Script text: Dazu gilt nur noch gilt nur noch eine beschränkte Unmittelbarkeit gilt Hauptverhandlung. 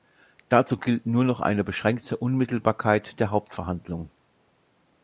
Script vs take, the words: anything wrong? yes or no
yes